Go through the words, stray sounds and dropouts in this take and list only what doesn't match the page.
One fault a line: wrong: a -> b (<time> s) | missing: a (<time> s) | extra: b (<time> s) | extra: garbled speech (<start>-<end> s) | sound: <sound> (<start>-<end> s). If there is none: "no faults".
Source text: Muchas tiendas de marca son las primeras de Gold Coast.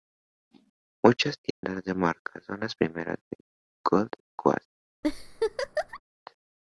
sound: dropout (1.5-1.6 s)
sound: laugh (5.0-6.0 s)